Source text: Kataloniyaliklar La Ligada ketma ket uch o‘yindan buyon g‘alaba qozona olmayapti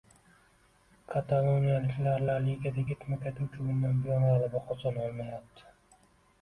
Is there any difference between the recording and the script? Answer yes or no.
no